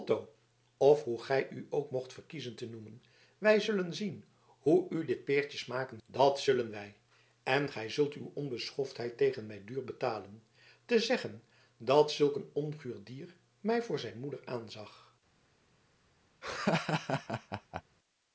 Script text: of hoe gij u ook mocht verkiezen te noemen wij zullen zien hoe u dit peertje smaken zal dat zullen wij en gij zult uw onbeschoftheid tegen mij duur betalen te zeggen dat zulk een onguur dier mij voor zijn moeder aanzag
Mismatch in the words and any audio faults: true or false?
true